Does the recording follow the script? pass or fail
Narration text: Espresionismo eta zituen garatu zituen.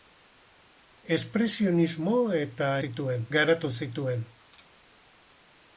pass